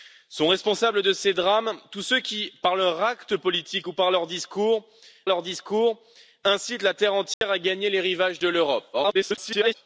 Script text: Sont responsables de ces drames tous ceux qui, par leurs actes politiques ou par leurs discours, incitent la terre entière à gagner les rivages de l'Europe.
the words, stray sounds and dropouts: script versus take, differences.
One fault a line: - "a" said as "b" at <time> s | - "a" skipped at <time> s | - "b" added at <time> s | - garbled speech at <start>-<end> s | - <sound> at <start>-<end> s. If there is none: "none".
- "leurs discours" added at 5.3 s
- dropout at 7.3-7.4 s
- garbled speech at 8.9-9.7 s